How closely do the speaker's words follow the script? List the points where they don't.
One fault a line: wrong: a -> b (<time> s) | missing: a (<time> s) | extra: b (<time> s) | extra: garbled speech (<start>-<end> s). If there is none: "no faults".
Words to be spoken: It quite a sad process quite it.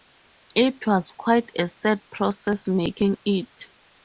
extra: was (0.9 s)
wrong: quite -> making (2.7 s)